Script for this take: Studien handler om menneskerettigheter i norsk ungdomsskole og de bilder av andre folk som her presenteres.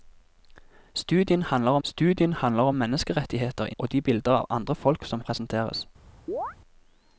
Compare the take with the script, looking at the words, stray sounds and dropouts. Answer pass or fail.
fail